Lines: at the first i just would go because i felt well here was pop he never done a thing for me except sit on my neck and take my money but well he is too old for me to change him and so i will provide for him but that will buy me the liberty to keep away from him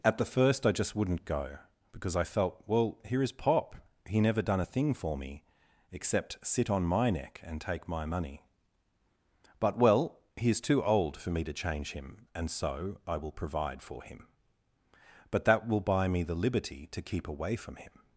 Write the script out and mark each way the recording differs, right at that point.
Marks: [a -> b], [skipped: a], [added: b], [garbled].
at the first i just [would -> wouldn't] go because i felt well here [was -> is] pop he never done a thing for me except sit on my neck and take my money but well he is too old for me to change him and so i will provide for him but that will buy me the liberty to keep away from him